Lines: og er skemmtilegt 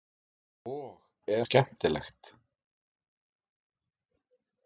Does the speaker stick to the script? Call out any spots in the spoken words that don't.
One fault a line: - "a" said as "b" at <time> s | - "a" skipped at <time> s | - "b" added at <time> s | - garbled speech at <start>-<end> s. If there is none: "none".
none